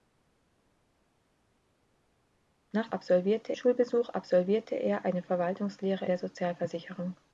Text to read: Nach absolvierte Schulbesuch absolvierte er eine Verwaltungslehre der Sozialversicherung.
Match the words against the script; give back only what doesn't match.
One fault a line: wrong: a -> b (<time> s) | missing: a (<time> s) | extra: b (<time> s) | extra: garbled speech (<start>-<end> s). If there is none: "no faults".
no faults